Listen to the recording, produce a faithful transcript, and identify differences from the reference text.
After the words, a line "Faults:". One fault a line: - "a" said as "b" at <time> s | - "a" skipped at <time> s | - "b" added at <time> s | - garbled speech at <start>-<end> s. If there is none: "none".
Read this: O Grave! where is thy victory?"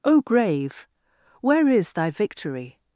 O Grave! where is thy victory?"
Faults:
none